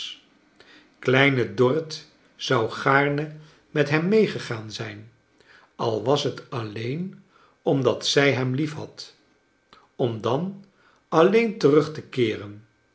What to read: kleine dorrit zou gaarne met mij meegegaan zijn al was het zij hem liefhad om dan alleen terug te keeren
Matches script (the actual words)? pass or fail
fail